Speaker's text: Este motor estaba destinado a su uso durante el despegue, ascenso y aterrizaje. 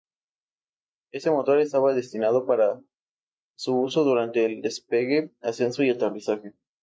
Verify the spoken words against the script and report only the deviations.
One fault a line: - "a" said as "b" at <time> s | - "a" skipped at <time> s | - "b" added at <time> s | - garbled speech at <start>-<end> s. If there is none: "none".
- "a" said as "para" at 2.5 s